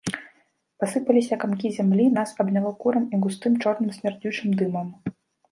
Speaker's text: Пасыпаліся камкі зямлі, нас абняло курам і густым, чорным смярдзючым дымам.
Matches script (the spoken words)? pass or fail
pass